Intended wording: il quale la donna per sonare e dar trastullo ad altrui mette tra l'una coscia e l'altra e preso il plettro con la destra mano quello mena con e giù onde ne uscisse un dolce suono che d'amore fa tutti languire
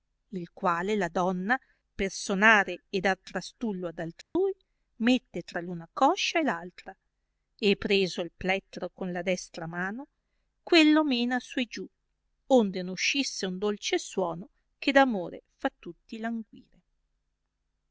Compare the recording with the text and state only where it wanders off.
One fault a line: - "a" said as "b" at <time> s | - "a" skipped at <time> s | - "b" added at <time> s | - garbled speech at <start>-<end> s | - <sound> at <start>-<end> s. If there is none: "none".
- dropout at 4.2-4.4 s
- "con" said as "su" at 11.4 s